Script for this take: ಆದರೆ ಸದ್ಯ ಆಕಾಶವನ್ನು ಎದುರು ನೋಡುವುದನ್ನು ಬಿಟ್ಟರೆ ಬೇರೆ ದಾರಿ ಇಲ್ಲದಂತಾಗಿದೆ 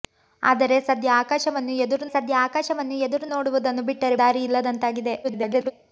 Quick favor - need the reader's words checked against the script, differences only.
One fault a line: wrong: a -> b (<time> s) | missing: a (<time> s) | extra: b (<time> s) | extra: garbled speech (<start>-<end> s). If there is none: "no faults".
extra: ಸದ್ಯ ಆಕಾಶವನ್ನು ಎದುರು (2.1 s)
missing: ಬೇರೆ (4.2 s)
extra: garbled speech (5.2-5.7 s)